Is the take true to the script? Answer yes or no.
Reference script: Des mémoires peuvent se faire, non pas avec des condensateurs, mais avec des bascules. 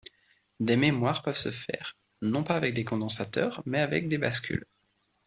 yes